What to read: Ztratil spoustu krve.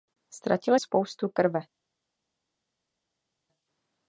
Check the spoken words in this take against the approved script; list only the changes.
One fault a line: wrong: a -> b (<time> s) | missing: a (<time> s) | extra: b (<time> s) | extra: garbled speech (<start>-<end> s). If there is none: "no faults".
no faults